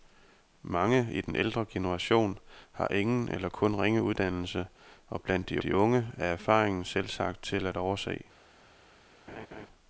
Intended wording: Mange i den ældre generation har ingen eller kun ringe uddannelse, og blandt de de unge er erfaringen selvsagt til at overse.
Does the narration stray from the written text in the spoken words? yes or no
no